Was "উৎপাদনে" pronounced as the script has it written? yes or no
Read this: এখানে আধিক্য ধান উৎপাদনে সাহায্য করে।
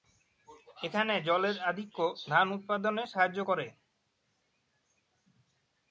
yes